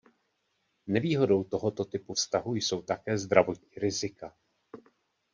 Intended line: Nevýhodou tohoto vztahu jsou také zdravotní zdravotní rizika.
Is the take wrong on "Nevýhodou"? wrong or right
right